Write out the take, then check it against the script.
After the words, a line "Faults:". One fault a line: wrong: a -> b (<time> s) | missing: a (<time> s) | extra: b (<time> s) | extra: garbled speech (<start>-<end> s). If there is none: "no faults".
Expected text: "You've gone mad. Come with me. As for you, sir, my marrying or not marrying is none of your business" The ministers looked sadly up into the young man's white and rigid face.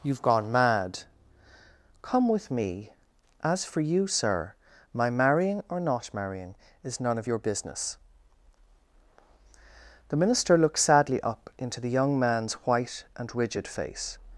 "You've gone mad. Come with me. As for you, sir, my marrying or not marrying is none of your business" The minister looked sadly up into the young man's white and rigid face.
Faults:
wrong: ministers -> minister (10.2 s)